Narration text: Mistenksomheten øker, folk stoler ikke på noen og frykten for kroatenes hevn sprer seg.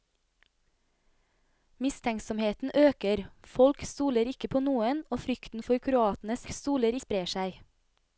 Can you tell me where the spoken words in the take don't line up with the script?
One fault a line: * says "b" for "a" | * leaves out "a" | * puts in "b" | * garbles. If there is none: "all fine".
* says "stoler" for "hevn"